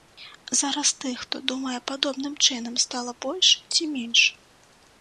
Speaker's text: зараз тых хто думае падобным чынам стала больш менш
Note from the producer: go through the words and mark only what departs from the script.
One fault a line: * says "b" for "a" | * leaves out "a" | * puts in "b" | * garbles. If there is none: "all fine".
* puts in "ці"